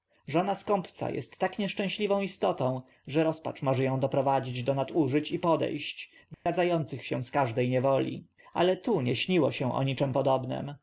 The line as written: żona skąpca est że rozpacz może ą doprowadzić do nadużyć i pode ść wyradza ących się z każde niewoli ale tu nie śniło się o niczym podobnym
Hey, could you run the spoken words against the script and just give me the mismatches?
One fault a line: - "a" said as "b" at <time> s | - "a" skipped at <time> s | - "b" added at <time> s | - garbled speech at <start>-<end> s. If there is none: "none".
- "tak nieszczęśliwą istotą" added at 1.4 s